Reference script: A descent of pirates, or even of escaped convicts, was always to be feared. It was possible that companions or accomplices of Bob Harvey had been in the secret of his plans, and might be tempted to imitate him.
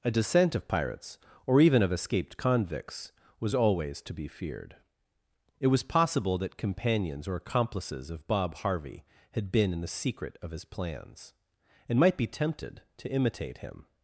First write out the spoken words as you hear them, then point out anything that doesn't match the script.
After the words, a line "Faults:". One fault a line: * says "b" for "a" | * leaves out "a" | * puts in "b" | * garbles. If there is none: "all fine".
A descent of pirates, or even of escaped convicts, was always to be feared. It was possible that companions or accomplices of Bob Harvey had been in the secret of his plans, and might be tempted to imitate him.
Faults:
all fine